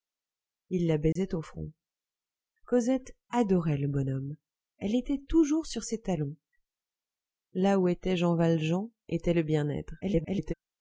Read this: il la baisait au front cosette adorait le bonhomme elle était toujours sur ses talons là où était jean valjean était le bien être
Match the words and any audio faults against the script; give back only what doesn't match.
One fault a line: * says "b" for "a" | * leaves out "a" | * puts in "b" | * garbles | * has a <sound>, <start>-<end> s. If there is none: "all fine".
* has a dropout, 1.1-1.2 s
* garbles